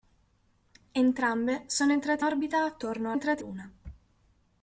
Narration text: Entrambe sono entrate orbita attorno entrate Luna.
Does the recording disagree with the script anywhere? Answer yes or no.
no